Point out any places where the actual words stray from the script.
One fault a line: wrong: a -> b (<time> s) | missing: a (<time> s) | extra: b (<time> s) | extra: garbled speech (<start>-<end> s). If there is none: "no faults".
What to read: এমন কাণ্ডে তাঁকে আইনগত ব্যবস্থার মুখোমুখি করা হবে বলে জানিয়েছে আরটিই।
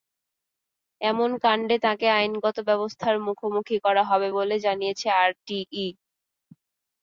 no faults